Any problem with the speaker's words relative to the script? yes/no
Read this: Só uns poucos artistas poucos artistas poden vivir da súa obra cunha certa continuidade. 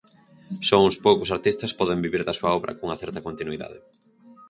yes